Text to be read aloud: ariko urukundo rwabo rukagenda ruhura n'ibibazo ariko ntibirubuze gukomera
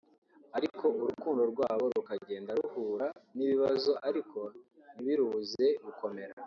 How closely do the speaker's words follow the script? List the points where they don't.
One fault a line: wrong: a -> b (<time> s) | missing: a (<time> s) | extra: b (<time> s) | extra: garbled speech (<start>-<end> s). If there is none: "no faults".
no faults